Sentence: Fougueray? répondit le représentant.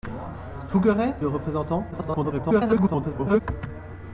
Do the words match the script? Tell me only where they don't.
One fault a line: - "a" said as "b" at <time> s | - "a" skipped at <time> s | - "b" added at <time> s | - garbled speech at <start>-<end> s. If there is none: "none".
- "répondit" skipped at 1.1 s
- garbled speech at 1.9-3.4 s